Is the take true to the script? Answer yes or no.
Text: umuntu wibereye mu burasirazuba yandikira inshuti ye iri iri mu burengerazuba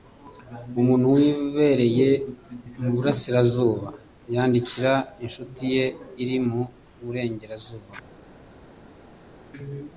no